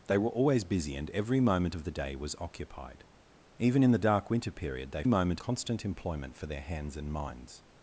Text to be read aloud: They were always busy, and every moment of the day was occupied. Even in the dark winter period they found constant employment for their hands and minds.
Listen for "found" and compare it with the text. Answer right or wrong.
wrong